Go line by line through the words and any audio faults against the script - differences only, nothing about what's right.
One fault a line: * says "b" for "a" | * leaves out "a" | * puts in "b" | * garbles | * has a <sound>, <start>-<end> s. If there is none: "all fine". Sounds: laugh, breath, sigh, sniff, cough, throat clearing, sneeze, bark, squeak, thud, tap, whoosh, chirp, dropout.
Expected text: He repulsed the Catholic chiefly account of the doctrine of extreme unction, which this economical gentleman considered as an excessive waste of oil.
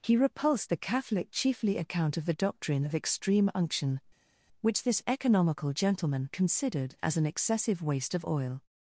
all fine